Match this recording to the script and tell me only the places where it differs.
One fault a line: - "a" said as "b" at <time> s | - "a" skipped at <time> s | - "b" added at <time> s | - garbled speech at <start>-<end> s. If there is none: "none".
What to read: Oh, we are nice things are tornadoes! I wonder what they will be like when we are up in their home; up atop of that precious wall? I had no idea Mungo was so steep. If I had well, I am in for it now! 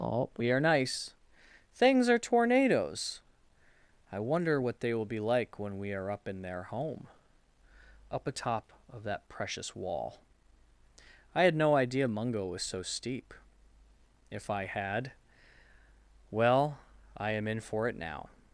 none